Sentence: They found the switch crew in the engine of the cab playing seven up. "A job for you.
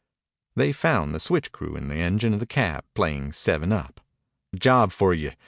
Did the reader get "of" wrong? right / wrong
right